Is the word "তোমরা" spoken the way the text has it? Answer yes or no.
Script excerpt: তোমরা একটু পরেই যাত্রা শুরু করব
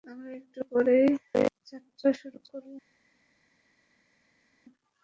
no